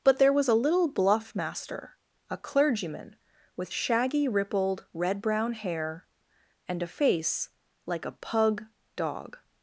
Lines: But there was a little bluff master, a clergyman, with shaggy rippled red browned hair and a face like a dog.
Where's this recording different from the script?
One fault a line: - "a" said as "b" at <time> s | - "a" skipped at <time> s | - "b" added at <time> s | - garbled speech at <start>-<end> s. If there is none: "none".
- "browned" said as "brown" at 5.2 s
- "pug" added at 8.1 s